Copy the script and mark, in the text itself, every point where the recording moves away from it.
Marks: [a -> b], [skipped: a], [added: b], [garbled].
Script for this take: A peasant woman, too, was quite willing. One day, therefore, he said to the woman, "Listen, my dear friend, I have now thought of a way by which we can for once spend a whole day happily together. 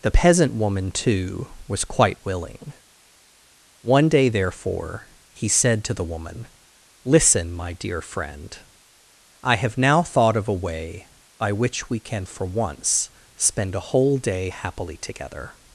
[A -> The] peasant woman, too, was quite willing. One day, therefore, he said to the woman, "Listen, my dear friend, I have now thought of a way by which we can for once spend a whole day happily together.